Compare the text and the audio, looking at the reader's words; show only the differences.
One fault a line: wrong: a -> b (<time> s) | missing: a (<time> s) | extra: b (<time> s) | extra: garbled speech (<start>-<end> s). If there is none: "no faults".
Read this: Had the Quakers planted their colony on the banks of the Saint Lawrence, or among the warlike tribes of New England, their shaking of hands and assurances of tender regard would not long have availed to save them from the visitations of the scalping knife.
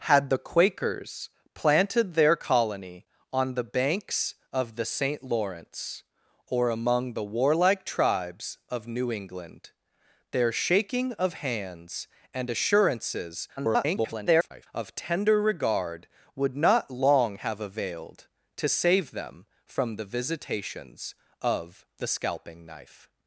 extra: garbled speech (13.6-14.7 s)